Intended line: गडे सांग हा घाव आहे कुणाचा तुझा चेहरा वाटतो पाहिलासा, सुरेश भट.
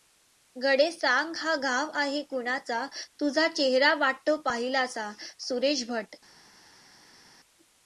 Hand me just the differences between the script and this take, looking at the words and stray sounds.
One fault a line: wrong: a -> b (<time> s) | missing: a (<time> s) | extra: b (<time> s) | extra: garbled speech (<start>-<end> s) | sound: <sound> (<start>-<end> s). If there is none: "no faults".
no faults